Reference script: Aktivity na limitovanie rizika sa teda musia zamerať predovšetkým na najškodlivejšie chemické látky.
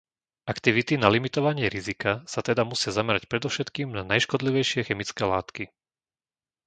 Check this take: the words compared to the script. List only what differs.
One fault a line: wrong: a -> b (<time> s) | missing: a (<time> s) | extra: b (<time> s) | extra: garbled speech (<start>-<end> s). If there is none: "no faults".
no faults